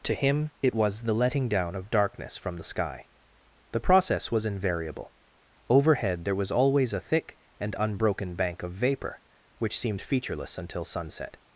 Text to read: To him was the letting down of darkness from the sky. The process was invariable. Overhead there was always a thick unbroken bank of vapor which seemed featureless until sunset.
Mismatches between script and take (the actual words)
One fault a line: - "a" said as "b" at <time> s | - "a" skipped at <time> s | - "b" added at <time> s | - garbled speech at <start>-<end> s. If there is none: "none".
- "it" added at 0.6 s
- "and" added at 7.6 s